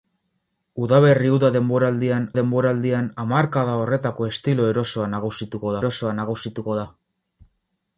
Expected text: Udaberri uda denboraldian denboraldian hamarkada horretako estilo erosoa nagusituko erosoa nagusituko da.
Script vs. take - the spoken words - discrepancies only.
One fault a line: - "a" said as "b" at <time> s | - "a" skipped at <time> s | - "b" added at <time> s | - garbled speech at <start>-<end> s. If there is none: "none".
none